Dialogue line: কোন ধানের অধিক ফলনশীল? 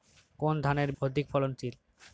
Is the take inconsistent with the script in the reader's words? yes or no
no